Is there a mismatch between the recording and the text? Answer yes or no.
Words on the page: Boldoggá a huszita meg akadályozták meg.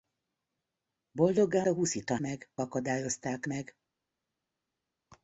no